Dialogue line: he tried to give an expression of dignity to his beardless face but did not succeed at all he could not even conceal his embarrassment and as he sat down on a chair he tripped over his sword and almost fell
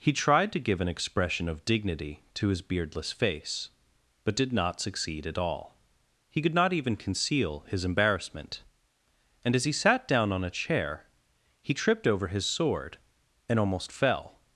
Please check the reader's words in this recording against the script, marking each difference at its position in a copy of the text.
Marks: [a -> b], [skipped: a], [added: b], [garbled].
he tried to give an expression of dignity to his beardless face but did not succeed at all he could not even conceal his embarrassment and as he sat down on a chair he tripped over his sword and almost fell